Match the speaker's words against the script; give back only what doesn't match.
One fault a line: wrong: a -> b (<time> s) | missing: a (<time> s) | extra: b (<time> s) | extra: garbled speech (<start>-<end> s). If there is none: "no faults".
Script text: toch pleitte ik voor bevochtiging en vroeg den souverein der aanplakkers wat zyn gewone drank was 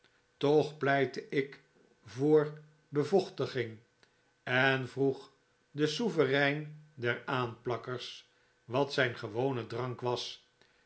no faults